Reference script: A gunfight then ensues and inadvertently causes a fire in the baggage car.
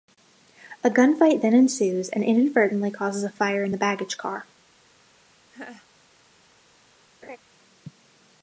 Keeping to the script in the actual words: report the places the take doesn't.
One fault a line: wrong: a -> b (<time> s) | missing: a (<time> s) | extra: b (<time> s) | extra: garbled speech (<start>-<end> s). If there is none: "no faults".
no faults